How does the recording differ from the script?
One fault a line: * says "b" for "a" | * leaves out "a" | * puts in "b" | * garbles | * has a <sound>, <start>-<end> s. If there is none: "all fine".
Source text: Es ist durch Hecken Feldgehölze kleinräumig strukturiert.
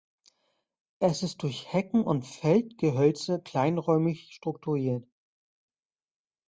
* puts in "und"